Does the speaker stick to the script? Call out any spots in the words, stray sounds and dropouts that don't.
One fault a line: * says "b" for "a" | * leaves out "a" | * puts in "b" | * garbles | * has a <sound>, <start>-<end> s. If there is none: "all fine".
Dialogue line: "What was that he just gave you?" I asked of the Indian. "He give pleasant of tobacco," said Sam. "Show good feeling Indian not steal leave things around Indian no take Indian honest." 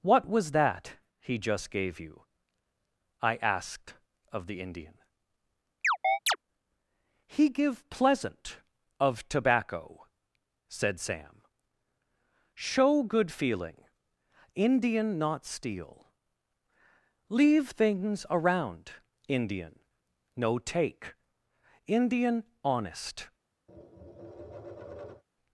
* has a chirp, 5.8-6.4 s
* has a tap, 23.7-25.2 s